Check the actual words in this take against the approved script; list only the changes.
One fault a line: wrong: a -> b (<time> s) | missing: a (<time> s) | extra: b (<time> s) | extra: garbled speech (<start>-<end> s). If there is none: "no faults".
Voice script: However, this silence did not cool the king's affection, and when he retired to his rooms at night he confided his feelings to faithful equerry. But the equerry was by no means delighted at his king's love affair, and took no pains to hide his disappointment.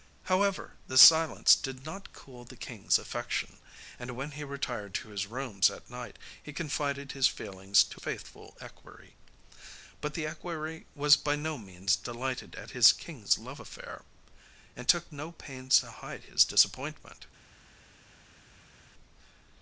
no faults